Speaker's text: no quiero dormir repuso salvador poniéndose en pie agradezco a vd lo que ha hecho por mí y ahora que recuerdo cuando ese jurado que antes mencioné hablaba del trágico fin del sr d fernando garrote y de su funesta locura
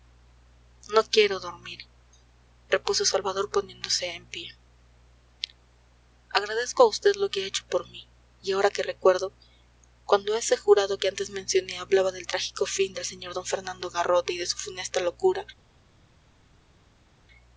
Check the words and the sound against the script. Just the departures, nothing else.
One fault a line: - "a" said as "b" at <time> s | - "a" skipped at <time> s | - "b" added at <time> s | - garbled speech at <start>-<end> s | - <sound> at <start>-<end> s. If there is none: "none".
none